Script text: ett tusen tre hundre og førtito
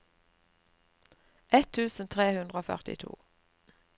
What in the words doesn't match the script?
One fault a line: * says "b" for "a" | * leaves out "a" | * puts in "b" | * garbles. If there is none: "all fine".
all fine